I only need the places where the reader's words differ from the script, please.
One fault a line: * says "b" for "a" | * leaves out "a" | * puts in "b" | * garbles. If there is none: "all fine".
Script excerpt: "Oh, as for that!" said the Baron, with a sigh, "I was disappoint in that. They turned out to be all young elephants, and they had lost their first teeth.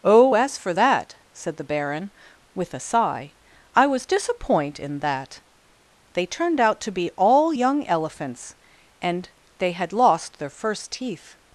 all fine